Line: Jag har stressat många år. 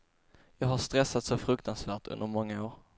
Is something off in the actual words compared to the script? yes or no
yes